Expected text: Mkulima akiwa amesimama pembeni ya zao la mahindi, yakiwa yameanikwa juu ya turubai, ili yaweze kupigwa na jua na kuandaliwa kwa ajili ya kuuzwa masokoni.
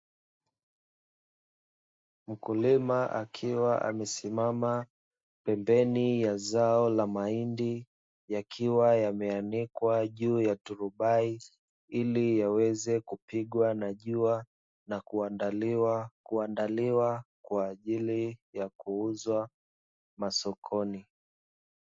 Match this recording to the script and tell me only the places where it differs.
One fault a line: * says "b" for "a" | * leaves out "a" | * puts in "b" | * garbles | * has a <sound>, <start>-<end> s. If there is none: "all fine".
* puts in "kuandaliwa"